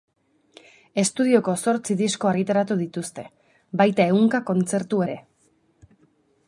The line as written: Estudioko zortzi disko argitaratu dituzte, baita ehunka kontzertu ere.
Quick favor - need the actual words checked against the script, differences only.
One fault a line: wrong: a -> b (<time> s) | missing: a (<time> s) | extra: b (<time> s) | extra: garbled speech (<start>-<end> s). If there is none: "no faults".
no faults